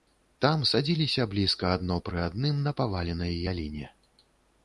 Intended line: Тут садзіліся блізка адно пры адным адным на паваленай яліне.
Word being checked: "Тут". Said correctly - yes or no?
no